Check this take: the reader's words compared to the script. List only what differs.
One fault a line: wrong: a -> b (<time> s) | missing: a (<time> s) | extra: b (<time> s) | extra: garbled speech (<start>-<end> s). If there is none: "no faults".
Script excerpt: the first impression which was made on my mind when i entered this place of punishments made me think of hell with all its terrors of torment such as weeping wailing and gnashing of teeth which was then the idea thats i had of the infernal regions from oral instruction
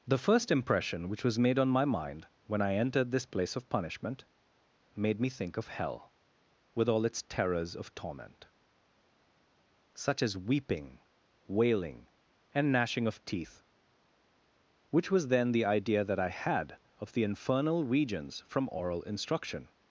wrong: punishments -> punishment (3.7 s)
wrong: thats -> that (16.0 s)